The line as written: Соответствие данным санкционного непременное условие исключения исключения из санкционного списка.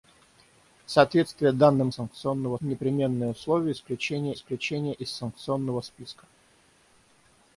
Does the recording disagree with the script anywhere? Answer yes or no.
no